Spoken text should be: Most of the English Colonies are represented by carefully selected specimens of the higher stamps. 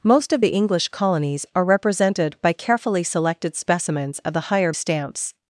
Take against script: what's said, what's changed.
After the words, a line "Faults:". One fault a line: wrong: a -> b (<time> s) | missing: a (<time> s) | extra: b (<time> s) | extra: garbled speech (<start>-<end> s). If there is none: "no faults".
Most of the English Colonies are represented by carefully selected specimens of the higher stamps.
Faults:
no faults